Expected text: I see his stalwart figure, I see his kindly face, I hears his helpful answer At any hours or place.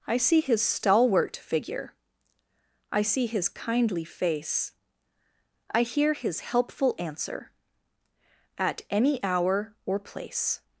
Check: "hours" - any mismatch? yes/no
yes